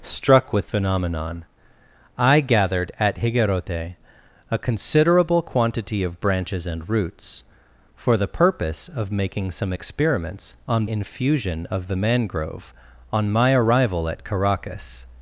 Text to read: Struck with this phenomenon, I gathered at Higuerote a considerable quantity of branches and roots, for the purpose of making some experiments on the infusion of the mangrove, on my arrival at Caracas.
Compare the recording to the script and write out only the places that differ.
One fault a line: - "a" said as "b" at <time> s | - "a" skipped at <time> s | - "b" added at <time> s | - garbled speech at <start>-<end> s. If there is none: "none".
- "this" skipped at 0.7 s
- "the" skipped at 10.9 s